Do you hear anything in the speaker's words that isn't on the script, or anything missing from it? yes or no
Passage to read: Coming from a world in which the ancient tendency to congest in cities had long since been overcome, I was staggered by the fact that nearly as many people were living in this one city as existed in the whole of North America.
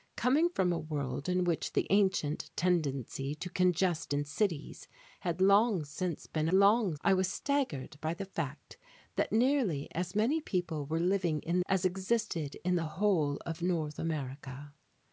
yes